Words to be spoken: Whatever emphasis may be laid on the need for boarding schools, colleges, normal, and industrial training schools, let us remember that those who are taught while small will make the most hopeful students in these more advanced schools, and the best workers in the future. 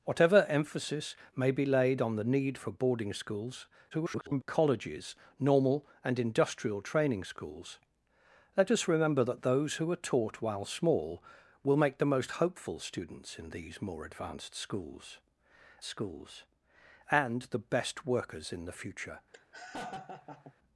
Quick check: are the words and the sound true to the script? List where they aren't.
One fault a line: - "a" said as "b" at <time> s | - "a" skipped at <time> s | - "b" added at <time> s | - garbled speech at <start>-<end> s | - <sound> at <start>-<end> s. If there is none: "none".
- garbled speech at 3.9-4.4 s
- "schools" added at 15.8 s
- laugh at 19.3-20.5 s